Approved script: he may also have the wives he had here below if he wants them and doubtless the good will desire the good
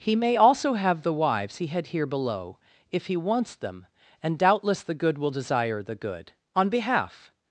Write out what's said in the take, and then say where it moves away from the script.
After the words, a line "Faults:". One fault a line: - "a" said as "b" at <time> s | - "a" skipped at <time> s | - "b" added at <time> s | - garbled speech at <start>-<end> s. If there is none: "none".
he may also have the wives he had here below if he wants them and doubtless the good will desire the good on behalf
Faults:
- "on behalf" added at 6.5 s